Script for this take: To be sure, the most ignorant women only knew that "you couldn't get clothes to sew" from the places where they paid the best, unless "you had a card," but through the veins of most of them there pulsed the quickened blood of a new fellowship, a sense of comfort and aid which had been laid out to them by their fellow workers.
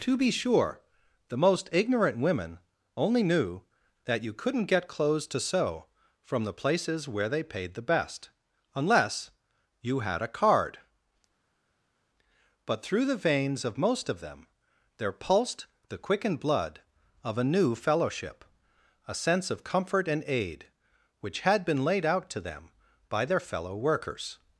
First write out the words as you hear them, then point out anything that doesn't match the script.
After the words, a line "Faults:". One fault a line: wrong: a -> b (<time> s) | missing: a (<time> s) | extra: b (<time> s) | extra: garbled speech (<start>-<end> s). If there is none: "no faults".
To be sure, the most ignorant women only knew that "you couldn't get clothes to sew" from the places where they paid the best, unless "you had a card," but through the veins of most of them there pulsed the quickened blood of a new fellowship, a sense of comfort and aid which had been laid out to them by their fellow workers.
Faults:
no faults